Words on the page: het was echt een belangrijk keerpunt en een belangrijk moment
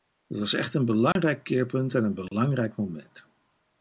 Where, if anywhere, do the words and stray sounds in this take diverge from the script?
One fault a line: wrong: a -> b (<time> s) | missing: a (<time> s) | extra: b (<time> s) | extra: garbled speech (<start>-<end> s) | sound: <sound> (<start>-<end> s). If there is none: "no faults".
sound: dropout (1.1-1.2 s)
sound: dropout (2.3-2.3 s)